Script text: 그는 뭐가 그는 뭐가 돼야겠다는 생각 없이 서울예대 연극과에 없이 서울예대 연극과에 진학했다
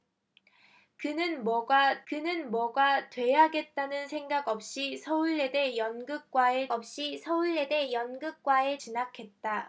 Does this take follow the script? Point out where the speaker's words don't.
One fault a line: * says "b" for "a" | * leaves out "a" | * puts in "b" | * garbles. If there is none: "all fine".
all fine